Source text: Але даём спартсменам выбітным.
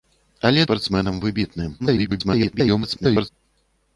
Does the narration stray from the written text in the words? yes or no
yes